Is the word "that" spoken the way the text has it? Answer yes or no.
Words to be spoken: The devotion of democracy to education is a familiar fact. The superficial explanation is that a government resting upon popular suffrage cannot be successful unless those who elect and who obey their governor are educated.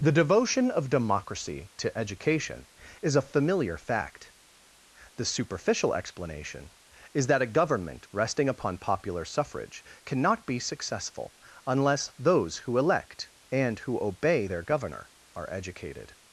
yes